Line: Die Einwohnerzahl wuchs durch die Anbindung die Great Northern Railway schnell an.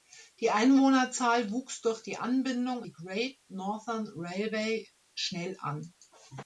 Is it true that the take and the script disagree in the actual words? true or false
false